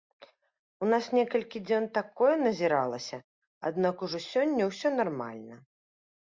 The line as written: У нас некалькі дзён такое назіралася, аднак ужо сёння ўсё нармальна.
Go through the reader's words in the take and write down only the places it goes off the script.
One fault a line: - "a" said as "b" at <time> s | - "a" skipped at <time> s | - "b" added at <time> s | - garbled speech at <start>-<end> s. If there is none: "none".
none